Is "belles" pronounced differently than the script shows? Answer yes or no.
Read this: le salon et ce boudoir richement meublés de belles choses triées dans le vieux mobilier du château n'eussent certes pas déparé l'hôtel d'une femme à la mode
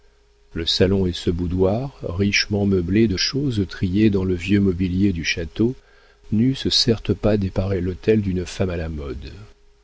yes